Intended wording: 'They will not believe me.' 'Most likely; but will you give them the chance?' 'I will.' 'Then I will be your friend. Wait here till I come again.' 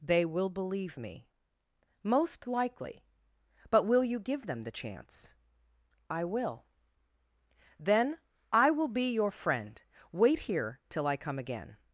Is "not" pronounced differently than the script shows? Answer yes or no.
yes